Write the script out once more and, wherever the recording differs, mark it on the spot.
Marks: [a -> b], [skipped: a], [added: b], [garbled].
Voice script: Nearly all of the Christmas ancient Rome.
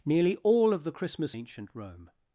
Nearly all of the Christmas ancient Rome.